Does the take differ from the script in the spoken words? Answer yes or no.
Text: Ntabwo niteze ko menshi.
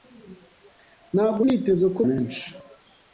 no